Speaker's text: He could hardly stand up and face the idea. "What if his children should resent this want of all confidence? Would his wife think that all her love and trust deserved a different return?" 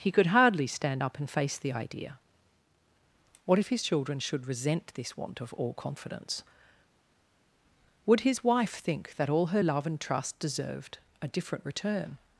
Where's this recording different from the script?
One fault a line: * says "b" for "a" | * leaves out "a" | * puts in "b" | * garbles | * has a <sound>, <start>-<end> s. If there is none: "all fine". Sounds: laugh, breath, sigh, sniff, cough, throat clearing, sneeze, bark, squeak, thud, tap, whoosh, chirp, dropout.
all fine